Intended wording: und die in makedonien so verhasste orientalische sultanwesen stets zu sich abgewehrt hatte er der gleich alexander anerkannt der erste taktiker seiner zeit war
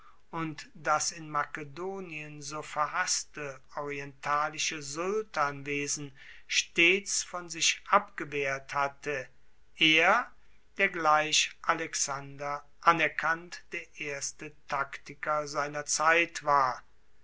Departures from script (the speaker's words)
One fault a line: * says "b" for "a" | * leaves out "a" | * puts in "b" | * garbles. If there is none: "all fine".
* says "das" for "die"
* says "von" for "zu"